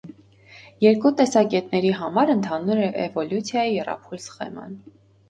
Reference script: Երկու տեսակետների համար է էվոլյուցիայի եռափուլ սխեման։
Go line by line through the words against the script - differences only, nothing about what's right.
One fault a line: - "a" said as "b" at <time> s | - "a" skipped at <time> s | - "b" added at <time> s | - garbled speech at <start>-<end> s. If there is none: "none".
- "ընդհանուր" added at 2.3 s